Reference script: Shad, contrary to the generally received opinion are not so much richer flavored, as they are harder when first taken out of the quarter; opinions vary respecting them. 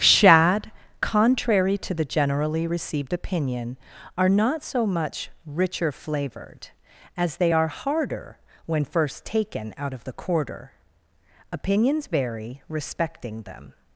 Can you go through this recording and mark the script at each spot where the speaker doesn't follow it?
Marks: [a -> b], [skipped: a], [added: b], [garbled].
Shad, contrary to the generally received opinion are not so much richer flavored, as they are harder when first taken out of the quarter; opinions vary respecting them.